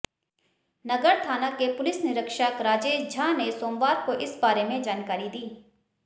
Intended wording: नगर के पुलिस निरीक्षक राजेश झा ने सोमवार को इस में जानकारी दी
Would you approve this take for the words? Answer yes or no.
no